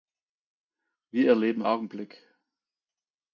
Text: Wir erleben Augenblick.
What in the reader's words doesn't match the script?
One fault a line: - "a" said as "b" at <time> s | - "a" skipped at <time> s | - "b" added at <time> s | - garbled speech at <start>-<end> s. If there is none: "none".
none